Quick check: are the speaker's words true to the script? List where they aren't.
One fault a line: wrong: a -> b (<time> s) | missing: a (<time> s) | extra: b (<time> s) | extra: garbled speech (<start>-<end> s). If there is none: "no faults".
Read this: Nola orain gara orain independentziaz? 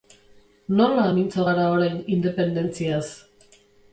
wrong: orain -> mintzo (1.2 s)